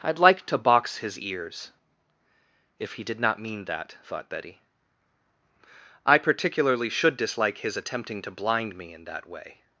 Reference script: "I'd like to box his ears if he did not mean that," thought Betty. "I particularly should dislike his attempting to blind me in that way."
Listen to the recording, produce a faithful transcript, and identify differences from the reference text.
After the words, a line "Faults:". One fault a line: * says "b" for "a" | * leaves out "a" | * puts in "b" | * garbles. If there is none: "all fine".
"I'd like to box his ears if he did not mean that," thought Betty. "I particularly should dislike his attempting to blind me in that way."
Faults:
all fine